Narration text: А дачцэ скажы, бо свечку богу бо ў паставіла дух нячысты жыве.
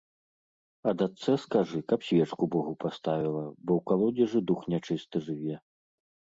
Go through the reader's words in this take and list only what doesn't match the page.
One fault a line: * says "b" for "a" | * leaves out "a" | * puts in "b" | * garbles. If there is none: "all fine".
* says "каб" for "бо"
* puts in "паставіла"
* says "калодзежы" for "паставіла"